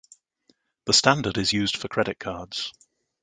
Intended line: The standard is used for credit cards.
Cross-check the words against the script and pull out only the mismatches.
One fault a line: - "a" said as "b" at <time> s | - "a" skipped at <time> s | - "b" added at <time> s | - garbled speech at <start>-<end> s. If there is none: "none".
none